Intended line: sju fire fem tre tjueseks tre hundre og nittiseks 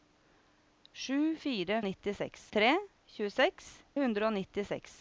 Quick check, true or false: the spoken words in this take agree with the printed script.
false